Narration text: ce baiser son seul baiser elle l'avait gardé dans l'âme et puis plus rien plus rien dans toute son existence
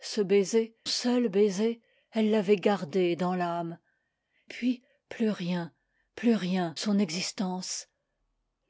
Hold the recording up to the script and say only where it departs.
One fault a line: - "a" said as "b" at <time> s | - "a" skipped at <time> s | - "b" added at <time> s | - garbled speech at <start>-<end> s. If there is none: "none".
- "son" skipped at 0.8 s
- "et" skipped at 3.8 s
- "dans toute" skipped at 6.8 s